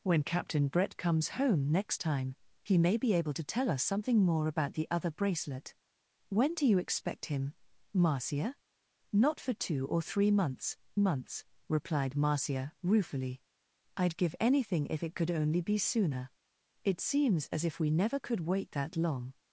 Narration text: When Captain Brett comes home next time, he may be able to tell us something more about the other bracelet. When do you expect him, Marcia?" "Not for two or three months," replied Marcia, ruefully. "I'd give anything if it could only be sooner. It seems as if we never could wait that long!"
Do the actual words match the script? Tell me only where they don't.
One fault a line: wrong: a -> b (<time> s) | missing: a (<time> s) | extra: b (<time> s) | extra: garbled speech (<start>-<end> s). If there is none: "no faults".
extra: months (11.0 s)